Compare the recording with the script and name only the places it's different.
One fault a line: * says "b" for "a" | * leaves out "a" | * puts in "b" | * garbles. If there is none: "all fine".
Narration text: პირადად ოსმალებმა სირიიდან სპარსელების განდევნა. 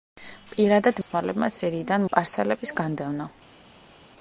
all fine